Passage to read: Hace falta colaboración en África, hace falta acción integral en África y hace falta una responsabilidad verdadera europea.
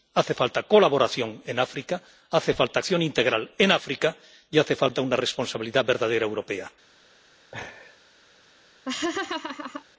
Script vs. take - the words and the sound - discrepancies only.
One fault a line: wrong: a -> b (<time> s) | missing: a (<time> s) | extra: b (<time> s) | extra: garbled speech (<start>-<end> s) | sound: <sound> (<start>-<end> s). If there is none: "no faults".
sound: laugh (7.5-8.0 s)
sound: laugh (8.9-9.8 s)